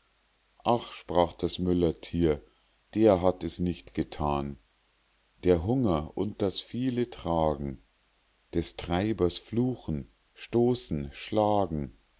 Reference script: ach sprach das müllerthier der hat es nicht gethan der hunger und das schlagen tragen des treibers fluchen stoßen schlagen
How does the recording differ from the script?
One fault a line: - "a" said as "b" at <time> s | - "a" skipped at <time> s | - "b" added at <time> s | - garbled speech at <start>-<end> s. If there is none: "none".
- "schlagen" said as "viele" at 6.6 s